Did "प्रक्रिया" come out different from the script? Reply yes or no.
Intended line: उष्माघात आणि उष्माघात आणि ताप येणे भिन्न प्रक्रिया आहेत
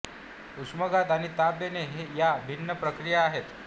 no